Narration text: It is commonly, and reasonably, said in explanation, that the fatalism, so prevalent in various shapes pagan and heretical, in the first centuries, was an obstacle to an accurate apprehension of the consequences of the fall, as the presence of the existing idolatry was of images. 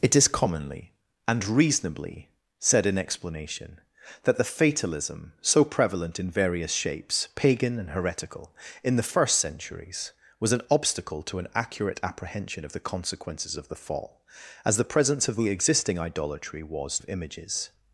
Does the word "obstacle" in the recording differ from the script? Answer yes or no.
no